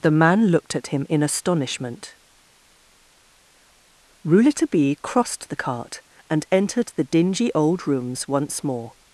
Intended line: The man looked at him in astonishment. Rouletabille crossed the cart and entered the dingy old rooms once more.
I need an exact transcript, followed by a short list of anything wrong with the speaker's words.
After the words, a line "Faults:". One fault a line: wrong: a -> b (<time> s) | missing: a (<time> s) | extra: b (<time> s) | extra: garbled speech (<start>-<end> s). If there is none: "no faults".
The man looked at him in astonishment. Rouletabille crossed the cart and entered the dingy old rooms once more.
Faults:
no faults